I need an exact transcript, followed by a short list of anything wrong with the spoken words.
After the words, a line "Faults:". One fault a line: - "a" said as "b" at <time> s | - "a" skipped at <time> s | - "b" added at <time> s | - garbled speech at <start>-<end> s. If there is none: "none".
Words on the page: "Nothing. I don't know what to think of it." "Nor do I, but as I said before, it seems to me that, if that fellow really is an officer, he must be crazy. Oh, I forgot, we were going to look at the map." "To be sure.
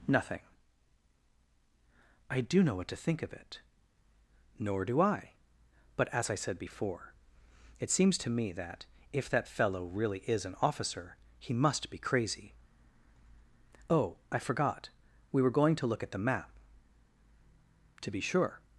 "Nothing. I do know what to think of it." "Nor do I, but as I said before, it seems to me that, if that fellow really is an officer, he must be crazy. Oh, I forgot, we were going to look at the map." "To be sure.
Faults:
- "don't" said as "do" at 2.4 s